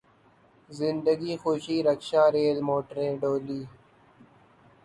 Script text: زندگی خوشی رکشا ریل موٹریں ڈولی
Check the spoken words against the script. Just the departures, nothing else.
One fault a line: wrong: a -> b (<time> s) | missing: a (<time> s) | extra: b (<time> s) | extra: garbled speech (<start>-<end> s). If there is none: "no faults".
no faults